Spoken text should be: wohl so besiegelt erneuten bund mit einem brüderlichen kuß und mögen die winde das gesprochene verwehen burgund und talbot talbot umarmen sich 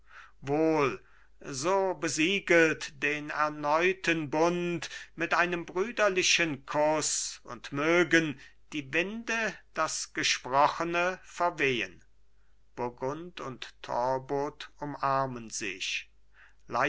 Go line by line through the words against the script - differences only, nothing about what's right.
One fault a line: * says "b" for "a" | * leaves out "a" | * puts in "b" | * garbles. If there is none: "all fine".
* puts in "den"
* leaves out "talbot"